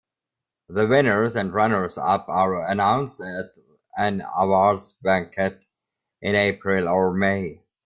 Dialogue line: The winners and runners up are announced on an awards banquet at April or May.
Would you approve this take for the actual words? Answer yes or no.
no